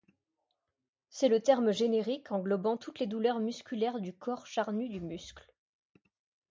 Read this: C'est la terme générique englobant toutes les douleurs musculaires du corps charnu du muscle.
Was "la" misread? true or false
true